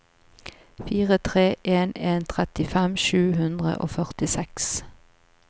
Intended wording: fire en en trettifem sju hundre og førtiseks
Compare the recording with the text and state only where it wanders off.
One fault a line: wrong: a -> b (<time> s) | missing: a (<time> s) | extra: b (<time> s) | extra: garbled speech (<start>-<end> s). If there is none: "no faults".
extra: tre (1.3 s)